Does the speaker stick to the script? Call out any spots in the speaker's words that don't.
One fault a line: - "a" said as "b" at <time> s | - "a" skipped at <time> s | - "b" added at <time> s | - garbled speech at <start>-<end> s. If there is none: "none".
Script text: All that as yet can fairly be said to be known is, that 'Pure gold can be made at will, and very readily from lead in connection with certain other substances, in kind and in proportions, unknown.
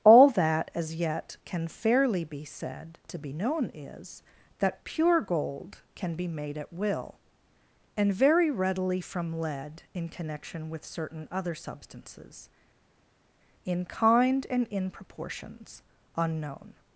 none